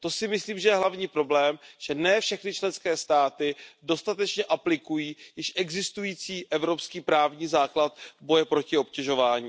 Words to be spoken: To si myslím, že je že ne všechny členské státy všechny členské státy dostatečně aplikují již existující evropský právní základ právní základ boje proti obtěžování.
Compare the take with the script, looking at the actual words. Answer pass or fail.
fail